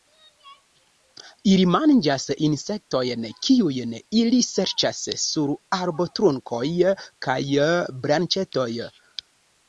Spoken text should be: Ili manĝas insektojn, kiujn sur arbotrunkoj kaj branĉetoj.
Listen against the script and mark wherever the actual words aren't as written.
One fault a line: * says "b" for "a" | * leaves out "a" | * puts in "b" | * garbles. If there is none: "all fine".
* puts in "ili serĉas"